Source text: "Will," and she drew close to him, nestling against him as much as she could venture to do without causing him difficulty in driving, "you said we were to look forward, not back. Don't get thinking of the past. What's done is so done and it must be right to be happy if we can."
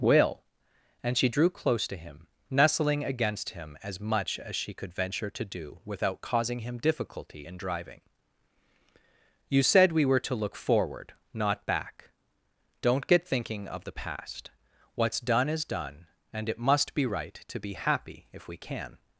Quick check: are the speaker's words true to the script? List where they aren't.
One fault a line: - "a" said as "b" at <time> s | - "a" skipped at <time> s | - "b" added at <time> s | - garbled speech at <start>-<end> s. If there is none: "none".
- "so" skipped at 15.7 s